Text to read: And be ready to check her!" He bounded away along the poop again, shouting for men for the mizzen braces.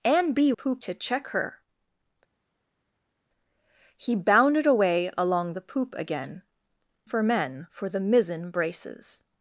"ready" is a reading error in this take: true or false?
true